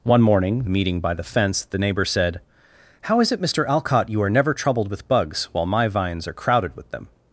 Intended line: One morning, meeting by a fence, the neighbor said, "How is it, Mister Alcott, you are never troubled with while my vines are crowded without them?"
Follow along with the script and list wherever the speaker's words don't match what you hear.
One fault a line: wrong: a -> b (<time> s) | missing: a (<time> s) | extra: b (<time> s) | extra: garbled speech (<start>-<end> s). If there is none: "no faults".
wrong: a -> the (1.1 s)
extra: bugs (5.1 s)
wrong: without -> with (6.8 s)